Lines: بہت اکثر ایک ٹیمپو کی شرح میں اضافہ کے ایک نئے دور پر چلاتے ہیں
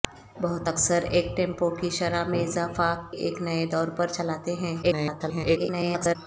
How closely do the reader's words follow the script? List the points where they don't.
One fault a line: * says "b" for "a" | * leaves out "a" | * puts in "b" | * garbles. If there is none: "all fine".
* leaves out "کے"
* garbles